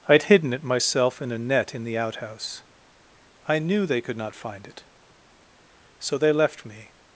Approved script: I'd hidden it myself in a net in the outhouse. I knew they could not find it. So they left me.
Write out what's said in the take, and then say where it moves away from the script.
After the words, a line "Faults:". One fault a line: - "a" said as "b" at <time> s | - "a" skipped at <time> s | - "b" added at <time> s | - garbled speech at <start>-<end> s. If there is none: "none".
I'd hidden it myself in a net in the outhouse. I knew they could not find it. So they left me.
Faults:
none